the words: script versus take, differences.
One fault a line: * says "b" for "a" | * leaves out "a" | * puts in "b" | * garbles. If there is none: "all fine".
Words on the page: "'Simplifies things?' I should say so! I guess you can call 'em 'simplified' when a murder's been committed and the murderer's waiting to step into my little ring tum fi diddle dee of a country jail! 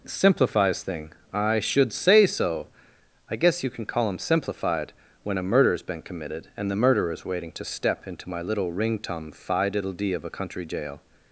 * says "thing" for "things"